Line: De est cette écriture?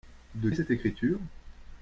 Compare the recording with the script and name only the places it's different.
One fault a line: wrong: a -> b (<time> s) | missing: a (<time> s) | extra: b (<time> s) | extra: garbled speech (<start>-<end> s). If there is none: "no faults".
no faults